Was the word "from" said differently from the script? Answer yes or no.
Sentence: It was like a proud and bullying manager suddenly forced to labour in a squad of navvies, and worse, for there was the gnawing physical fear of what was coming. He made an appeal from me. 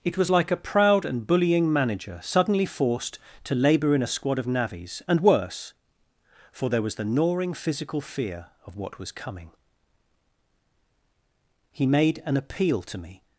yes